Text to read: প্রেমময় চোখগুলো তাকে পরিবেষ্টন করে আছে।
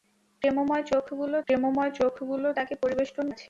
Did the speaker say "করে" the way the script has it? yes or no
no